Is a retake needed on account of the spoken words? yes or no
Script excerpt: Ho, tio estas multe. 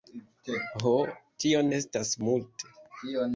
no